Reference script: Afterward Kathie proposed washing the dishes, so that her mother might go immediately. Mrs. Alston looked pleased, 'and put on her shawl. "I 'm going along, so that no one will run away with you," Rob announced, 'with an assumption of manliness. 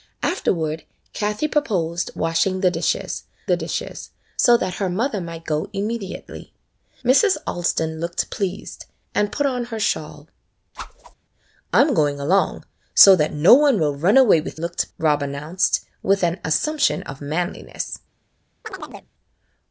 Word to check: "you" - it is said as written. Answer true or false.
false